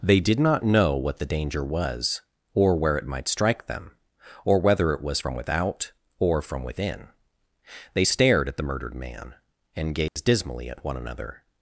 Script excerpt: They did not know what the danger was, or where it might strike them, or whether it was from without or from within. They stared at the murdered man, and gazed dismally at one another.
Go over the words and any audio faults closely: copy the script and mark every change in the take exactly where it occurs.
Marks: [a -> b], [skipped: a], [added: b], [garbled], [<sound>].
They did not know what the danger was, or where it might strike them, or whether it was from without or from within. They stared at the murdered man, and gazed [dropout] dismally at one another.